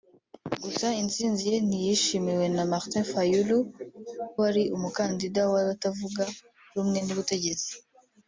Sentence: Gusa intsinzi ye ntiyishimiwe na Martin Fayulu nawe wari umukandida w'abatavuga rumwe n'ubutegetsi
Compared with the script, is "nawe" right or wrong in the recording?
wrong